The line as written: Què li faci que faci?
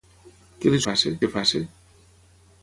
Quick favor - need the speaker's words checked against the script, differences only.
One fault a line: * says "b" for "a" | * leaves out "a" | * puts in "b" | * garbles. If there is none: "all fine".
all fine